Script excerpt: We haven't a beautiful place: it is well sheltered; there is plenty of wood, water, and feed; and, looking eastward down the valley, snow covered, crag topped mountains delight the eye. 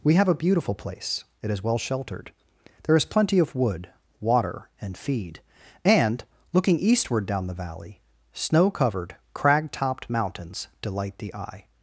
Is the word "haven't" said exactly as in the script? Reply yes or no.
no